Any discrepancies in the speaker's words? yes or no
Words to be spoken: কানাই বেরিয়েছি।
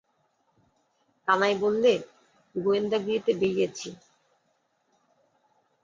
yes